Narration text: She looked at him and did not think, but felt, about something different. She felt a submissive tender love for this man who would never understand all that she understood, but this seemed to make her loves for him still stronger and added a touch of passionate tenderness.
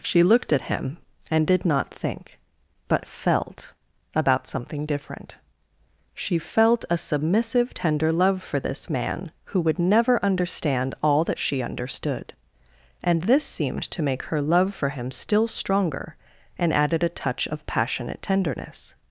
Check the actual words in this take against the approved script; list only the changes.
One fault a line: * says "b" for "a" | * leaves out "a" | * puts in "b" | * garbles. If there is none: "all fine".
* says "and" for "but"
* says "love" for "loves"